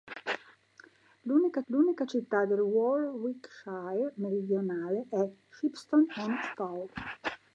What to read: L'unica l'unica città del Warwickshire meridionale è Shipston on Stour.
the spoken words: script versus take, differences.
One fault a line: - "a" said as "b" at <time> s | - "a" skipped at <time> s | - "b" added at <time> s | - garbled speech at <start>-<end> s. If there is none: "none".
none